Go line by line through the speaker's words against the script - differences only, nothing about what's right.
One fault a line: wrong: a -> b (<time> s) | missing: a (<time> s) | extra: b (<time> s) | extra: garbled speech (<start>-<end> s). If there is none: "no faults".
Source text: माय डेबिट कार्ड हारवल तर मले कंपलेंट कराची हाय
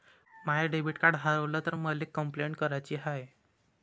no faults